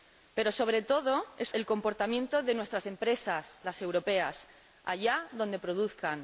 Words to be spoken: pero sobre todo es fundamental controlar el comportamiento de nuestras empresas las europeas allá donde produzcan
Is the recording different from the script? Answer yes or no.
yes